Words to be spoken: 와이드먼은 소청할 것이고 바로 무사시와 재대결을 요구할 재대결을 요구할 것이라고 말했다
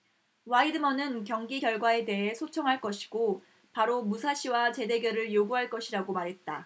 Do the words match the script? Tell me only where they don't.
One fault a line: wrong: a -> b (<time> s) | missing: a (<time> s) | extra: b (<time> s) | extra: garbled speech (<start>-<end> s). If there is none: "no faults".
extra: 경기 결과에 대해 (1.2 s)
missing: 재대결을 요구할 (5.7 s)